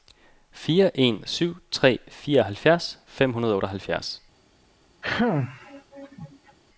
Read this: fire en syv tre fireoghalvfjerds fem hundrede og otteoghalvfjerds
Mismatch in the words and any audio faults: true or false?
true